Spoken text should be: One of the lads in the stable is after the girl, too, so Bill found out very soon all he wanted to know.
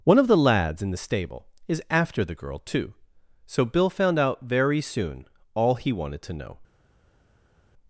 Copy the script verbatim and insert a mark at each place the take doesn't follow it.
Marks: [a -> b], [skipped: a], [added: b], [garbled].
One of the lads in the stable is after the girl, too, so Bill found out very soon all he wanted to know.